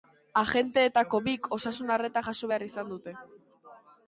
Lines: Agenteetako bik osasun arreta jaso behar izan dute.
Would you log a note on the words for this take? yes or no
no